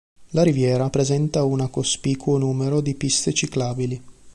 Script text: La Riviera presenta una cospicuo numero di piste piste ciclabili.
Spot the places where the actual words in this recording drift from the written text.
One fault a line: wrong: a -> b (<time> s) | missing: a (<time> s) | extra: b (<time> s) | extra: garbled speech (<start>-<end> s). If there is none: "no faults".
missing: piste (3.3 s)